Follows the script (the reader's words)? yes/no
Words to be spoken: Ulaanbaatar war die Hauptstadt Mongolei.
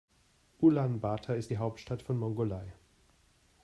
no